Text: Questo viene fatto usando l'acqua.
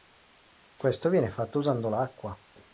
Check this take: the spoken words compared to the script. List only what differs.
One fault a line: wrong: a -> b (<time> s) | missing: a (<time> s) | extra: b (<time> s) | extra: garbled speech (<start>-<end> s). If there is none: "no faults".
no faults